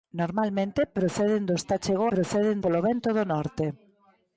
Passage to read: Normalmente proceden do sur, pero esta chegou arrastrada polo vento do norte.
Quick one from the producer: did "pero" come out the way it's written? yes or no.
no